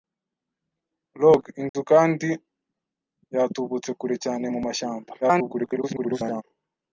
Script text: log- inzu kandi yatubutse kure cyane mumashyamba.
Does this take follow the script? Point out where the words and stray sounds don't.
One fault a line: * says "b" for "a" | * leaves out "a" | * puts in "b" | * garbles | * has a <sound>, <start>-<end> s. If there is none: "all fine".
* has a dropout, 1.7-1.7 s
* garbles